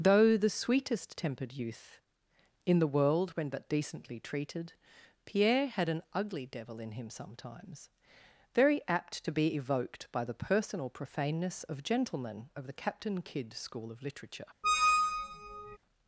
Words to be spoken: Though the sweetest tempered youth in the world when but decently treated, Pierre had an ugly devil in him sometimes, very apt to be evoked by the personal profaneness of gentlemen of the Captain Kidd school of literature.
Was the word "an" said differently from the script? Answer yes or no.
no